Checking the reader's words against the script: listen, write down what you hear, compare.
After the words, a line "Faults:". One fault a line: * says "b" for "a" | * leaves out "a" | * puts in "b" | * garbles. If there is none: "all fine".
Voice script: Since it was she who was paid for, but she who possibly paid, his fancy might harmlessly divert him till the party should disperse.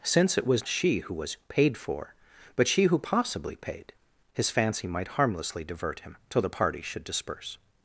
Since it was she who was paid for, but she who possibly paid, his fancy might harmlessly divert him till the party should disperse.
Faults:
all fine